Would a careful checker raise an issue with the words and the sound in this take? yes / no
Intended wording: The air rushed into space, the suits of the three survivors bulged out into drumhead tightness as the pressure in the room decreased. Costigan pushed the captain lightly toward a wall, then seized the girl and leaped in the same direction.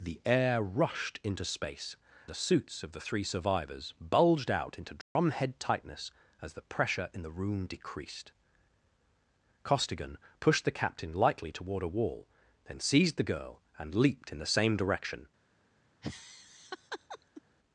yes